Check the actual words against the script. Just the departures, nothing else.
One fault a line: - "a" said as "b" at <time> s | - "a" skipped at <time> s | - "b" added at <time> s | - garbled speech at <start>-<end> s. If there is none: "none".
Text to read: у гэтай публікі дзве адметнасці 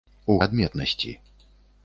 - "гэтай публікі дзве" skipped at 0.4 s